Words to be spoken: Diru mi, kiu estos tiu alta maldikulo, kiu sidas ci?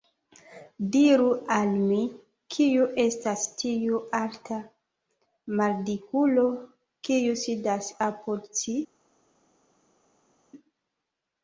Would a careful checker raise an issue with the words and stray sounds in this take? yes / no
yes